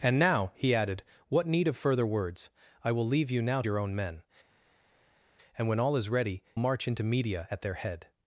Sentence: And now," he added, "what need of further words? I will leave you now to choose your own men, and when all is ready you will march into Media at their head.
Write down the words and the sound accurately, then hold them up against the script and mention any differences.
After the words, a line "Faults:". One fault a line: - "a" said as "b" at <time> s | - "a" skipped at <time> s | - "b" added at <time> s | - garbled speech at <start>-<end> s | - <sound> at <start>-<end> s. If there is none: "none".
And now," he added, "what need of further words? I will leave you now your own men, and when all is ready march into Media at their head.
Faults:
- "to choose" skipped at 3.6 s
- "you will" skipped at 6.4 s